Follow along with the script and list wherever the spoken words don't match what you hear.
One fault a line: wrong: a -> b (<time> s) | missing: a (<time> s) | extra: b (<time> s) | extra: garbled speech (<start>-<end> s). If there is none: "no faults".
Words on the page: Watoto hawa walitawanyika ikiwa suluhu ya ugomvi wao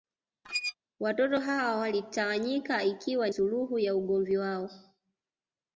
no faults